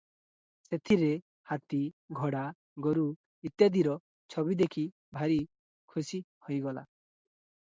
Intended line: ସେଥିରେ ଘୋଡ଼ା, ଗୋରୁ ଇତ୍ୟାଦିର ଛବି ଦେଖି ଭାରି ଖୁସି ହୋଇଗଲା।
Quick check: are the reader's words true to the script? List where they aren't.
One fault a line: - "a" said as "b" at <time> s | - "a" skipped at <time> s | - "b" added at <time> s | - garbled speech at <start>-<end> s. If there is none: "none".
- "ହାତୀ" added at 1.5 s